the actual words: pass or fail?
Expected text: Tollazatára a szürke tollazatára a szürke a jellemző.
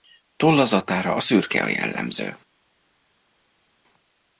fail